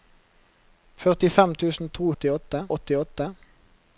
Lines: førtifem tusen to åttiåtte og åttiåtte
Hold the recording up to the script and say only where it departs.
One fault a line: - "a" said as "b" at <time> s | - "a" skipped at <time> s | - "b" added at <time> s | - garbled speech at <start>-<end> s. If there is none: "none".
none